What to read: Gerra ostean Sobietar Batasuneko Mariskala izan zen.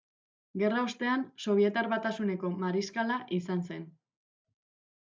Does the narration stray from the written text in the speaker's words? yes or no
no